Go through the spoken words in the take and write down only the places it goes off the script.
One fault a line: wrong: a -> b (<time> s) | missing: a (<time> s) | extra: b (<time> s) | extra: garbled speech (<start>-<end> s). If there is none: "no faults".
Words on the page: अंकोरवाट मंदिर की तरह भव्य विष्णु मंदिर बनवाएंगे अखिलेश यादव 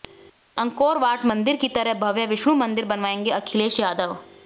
no faults